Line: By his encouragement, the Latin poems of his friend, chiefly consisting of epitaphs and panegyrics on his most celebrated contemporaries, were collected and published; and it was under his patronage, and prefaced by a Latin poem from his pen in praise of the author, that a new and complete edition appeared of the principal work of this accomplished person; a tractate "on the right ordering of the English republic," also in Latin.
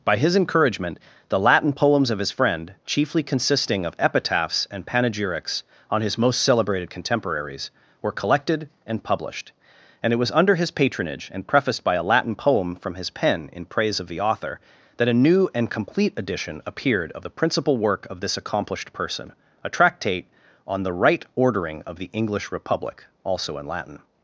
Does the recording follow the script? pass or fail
pass